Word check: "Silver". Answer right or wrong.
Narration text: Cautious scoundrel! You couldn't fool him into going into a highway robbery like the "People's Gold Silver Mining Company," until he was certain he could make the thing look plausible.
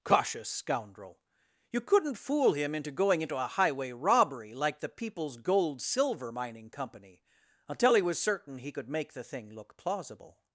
right